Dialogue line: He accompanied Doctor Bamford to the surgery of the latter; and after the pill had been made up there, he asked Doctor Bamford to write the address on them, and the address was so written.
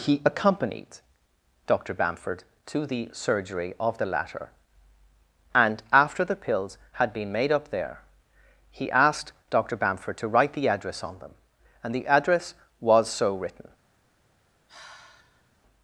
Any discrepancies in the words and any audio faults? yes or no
yes